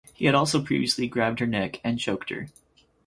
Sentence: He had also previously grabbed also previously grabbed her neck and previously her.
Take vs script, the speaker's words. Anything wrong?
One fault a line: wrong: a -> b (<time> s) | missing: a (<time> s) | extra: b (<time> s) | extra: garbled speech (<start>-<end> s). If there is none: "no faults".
missing: also previously grabbed (1.4 s)
wrong: previously -> choked (2.0 s)